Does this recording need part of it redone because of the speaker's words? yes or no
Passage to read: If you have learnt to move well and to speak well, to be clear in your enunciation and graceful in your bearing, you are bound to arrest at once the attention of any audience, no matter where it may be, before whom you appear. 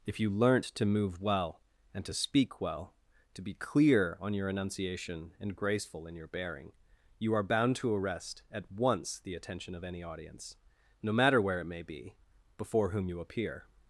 yes